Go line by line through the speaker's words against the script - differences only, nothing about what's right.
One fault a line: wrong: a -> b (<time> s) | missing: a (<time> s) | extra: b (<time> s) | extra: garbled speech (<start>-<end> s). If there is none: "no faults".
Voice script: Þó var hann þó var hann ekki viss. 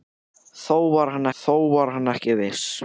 no faults